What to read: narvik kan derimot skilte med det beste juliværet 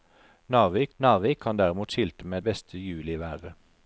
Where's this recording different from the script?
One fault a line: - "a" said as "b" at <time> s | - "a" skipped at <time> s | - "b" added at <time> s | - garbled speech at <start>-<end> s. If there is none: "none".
- "narvik" added at 1.0 s
- "det" skipped at 2.4 s